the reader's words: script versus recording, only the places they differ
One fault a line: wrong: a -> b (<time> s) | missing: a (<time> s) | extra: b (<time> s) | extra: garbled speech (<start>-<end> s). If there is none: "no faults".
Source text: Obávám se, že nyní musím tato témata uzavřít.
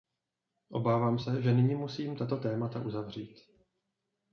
no faults